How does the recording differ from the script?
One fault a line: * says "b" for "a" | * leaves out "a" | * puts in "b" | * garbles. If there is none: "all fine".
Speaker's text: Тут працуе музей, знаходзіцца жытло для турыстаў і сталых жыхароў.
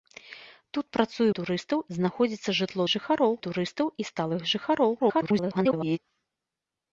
* says "турыстаў" for "музей"
* says "жыхароў" for "для"
* garbles